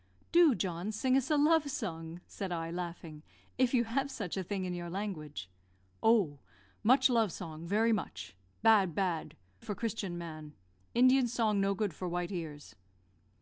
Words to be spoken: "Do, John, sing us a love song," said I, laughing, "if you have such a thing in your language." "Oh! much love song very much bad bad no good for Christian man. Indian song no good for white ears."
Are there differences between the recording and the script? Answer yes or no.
yes